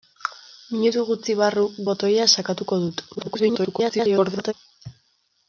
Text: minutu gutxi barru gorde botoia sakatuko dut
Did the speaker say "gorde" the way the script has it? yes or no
no